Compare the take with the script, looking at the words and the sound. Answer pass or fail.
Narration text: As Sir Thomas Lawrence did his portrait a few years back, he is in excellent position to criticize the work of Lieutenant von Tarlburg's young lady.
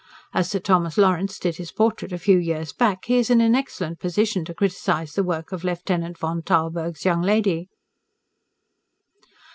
fail